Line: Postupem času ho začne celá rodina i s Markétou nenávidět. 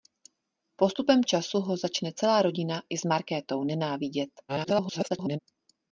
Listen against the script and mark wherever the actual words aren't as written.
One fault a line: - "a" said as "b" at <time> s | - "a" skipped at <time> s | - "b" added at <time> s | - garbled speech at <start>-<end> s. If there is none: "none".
- garbled speech at 4.5-5.4 s